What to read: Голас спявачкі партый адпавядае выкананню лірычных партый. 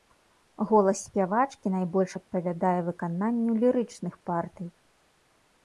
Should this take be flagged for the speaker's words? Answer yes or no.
yes